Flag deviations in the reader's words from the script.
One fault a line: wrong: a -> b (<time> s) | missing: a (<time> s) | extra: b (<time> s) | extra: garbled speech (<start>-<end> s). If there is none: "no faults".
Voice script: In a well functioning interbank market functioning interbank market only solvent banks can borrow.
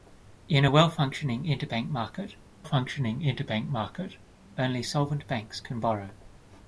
no faults